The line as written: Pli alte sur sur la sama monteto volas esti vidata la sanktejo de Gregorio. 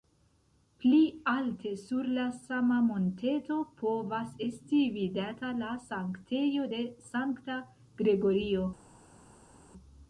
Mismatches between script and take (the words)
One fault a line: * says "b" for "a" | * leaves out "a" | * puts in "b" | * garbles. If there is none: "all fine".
* leaves out "sur"
* says "povas" for "volas"
* puts in "sankta"